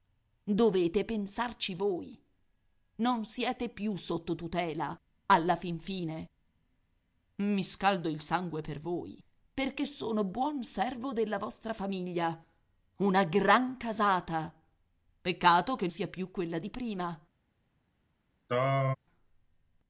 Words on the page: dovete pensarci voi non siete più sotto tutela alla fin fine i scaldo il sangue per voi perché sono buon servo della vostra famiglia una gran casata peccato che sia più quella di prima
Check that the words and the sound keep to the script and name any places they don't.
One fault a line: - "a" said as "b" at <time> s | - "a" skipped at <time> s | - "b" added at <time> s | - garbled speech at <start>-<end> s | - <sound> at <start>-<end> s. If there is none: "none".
- throat clearing at 18.5-19.0 s